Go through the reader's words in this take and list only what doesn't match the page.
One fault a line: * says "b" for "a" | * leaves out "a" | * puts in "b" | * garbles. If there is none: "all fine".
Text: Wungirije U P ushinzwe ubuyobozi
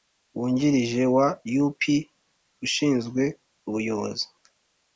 * puts in "wa"